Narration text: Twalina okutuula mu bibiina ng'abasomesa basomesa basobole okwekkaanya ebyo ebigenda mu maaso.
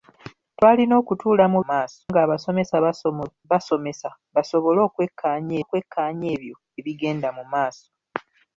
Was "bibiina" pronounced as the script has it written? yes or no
no